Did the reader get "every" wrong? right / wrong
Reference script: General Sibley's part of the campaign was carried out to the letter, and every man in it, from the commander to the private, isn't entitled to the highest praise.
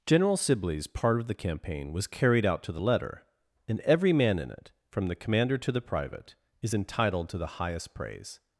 right